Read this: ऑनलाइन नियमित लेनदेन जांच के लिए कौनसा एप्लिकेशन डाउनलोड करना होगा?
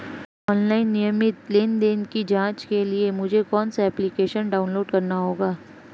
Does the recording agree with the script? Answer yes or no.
no